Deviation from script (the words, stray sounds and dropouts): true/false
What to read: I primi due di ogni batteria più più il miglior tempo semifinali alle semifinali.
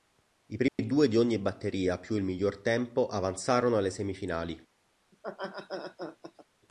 true